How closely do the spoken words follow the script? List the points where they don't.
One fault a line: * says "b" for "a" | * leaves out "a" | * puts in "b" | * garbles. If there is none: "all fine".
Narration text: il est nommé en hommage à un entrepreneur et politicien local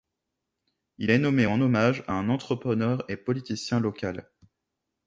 all fine